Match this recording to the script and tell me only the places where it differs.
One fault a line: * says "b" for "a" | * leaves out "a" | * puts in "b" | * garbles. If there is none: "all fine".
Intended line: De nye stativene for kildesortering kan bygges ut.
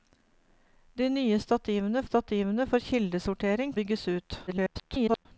* puts in "stativene"
* leaves out "kan"
* garbles